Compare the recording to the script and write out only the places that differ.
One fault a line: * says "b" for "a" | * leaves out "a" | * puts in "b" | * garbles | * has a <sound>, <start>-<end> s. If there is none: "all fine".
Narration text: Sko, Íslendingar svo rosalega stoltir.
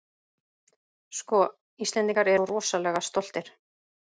all fine